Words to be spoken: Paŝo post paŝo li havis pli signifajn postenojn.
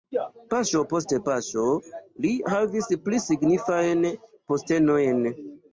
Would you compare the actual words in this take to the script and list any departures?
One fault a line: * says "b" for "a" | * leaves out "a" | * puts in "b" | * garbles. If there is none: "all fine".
all fine